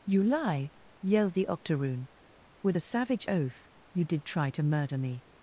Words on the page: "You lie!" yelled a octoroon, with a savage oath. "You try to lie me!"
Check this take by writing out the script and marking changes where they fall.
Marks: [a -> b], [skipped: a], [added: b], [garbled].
"You lie!" yelled [a -> the] octoroon, with a savage oath. "You [added: did] try to [lie -> murder] me!"